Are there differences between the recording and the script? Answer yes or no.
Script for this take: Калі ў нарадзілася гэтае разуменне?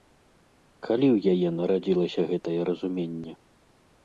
yes